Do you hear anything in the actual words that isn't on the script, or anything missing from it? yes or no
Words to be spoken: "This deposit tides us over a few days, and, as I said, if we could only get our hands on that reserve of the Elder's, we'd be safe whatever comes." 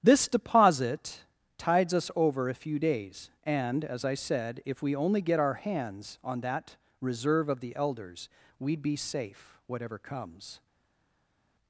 yes